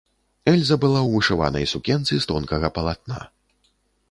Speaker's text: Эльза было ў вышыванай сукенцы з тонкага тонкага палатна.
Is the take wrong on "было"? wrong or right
wrong